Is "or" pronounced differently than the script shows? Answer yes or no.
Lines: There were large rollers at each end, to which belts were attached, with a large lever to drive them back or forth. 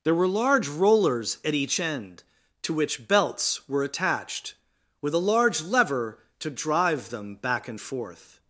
yes